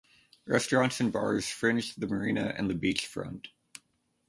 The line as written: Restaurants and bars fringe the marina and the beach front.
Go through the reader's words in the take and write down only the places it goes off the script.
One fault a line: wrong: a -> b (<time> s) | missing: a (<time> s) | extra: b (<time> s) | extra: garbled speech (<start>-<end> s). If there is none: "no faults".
no faults